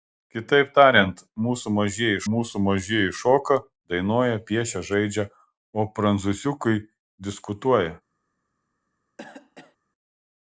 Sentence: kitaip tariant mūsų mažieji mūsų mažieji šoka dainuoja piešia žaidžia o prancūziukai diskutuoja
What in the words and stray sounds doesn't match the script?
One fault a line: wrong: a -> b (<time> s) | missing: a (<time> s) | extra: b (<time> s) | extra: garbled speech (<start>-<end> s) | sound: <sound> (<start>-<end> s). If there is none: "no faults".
sound: cough (9.2-9.8 s)